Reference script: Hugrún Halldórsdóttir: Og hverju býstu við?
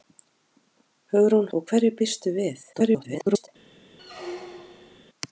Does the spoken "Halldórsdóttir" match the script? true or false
false